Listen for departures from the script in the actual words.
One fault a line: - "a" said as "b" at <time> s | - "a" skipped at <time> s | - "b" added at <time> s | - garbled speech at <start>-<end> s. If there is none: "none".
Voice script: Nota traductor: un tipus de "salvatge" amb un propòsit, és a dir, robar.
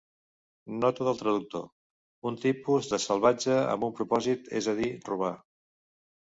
- "del" added at 1.1 s